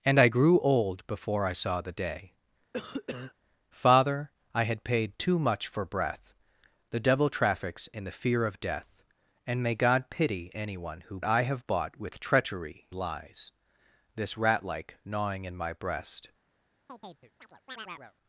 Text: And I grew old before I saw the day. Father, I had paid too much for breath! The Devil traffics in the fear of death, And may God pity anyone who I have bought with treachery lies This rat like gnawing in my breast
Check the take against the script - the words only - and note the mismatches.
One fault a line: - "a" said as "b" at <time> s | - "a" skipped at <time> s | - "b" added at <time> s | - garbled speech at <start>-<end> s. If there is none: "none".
none